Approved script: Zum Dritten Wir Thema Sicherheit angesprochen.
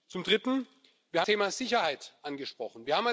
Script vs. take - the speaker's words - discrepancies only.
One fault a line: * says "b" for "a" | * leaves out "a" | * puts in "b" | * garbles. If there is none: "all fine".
all fine